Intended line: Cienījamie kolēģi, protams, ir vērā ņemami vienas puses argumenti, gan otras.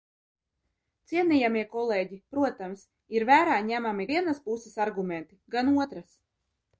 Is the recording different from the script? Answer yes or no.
no